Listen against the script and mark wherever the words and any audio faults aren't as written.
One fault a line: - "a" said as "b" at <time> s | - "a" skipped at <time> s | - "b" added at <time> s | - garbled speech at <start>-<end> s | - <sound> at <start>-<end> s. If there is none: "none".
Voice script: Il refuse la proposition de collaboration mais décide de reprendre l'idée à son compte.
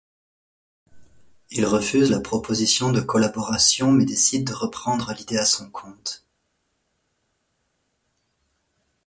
none